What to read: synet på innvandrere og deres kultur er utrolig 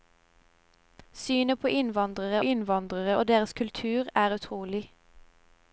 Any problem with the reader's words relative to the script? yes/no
yes